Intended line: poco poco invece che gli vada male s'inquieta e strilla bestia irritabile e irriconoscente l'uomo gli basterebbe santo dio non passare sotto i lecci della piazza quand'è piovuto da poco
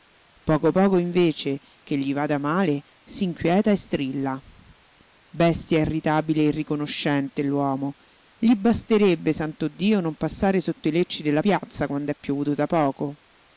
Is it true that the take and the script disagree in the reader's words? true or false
false